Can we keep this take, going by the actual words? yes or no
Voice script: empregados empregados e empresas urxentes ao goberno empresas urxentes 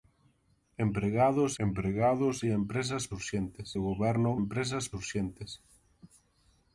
yes